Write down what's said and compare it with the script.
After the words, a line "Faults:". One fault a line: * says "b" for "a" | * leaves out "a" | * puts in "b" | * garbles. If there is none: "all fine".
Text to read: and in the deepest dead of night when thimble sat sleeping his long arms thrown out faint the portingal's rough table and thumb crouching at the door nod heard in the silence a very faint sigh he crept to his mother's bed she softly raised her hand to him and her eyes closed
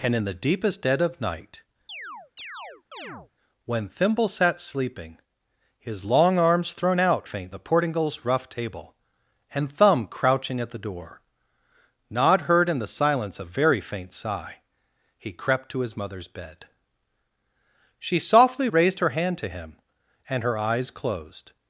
and in the deepest dead of night when thimble sat sleeping his long arms thrown out faint the portingal's rough table and thumb crouching at the door nod heard in the silence a very faint sigh he crept to his mother's bed she softly raised her hand to him and her eyes closed
Faults:
all fine